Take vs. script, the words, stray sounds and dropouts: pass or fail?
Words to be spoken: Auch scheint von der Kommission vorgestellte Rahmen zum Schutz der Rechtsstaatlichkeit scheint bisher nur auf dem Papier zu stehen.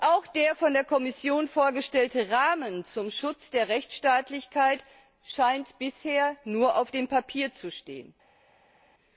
fail